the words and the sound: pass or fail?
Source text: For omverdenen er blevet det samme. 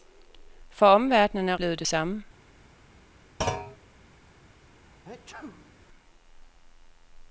fail